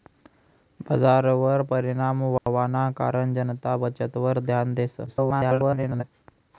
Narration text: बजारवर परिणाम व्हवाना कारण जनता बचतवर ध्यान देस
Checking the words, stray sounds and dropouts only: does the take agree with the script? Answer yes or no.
no